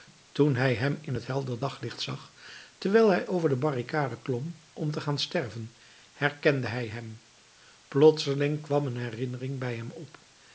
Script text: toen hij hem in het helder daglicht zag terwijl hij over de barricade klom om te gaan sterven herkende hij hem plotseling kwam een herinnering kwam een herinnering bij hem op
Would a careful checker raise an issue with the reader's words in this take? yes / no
yes